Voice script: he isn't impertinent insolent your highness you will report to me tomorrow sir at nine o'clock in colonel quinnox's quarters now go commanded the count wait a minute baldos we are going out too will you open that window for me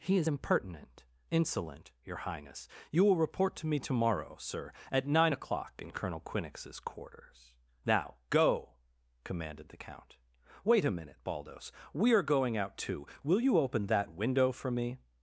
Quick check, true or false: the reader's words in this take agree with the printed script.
false